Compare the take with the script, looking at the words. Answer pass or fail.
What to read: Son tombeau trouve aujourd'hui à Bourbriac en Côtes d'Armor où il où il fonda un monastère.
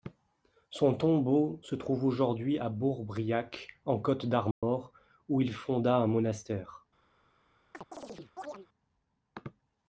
fail